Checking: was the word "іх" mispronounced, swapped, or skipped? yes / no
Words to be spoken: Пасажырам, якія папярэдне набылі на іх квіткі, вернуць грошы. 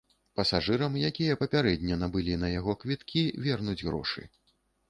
yes